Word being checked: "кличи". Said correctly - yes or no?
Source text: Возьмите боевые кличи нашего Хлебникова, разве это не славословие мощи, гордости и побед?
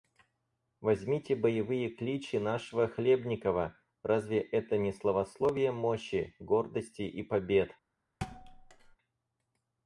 yes